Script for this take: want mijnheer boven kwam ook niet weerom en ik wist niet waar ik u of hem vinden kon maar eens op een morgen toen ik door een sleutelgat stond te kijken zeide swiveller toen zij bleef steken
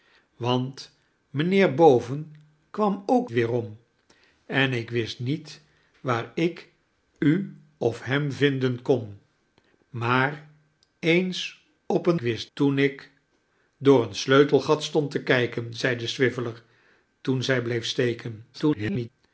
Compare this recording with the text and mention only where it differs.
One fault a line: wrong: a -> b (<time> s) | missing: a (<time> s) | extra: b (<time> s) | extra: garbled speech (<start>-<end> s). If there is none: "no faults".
missing: niet (3.3 s)
wrong: morgen -> wist (12.2 s)
extra: garbled speech (18.5-19.1 s)